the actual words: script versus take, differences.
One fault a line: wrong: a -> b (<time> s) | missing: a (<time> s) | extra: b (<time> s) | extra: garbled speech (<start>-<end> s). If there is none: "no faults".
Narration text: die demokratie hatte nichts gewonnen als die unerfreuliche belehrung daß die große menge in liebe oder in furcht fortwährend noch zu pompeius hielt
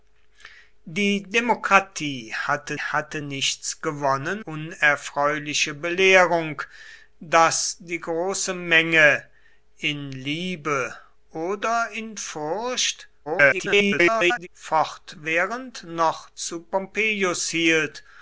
extra: hatte (2.8 s)
missing: als die (4.4 s)
extra: garbled speech (13.3-14.5 s)